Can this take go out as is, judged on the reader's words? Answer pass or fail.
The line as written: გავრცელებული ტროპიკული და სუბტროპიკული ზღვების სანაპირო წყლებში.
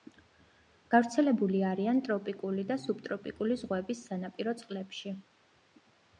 fail